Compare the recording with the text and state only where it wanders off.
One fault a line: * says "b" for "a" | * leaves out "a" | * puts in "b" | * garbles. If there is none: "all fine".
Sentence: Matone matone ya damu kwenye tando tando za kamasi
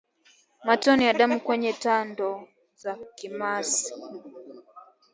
* leaves out "matone"
* leaves out "tando"